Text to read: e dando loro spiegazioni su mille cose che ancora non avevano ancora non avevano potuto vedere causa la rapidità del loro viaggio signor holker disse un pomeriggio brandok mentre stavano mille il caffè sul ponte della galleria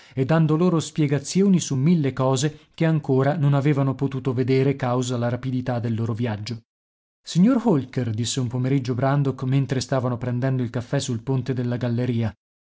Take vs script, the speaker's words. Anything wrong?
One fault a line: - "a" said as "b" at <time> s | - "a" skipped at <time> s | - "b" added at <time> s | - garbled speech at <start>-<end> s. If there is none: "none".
- "ancora non avevano" skipped at 4.0 s
- "mille" said as "prendendo" at 10.2 s